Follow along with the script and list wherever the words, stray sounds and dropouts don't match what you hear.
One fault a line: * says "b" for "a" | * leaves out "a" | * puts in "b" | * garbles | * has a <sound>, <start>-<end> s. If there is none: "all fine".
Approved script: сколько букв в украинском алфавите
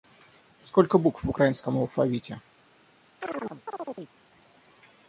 * has a chirp, 3.2-4.1 s